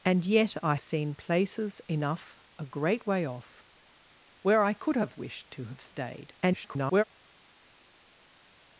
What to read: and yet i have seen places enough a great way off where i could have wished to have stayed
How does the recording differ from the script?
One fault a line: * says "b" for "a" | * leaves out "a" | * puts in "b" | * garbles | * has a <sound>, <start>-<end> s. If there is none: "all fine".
* leaves out "have"
* garbles